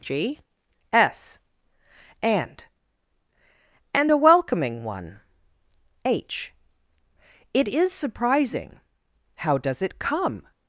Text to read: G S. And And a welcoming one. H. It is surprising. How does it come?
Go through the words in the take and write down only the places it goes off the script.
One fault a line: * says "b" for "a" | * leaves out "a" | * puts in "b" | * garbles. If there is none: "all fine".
all fine